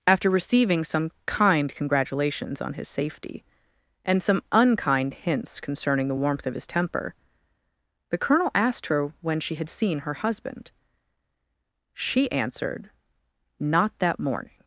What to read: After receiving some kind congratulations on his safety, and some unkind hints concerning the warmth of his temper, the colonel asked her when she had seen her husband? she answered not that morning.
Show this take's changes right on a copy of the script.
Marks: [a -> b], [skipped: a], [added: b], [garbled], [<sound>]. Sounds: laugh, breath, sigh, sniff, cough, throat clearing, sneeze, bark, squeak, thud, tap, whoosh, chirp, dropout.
After receiving some kind congratulations on his safety, and some unkind hints concerning the warmth of his temper, the colonel asked her when she had seen her husband? she answered not that morning.